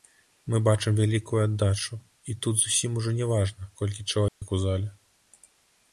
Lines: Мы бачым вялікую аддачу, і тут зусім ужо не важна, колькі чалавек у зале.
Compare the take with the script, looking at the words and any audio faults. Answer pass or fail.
fail